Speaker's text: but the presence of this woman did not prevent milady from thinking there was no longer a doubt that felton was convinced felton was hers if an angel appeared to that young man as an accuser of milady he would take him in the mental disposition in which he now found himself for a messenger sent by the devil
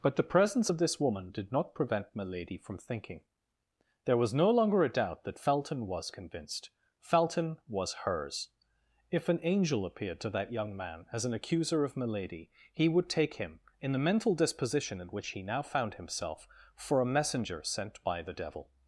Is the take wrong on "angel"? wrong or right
right